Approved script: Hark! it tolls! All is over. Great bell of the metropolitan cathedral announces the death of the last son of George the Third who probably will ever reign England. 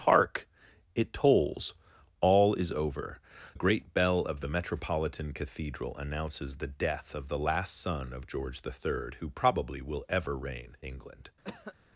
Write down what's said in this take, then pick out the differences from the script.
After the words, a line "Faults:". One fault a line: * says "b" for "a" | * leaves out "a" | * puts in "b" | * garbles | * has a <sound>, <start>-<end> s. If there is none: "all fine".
Hark! it tolls! All is over. Great bell of the metropolitan cathedral announces the death of the last son of George the Third who probably will ever reign England.
Faults:
* has a cough, 11.4-11.7 s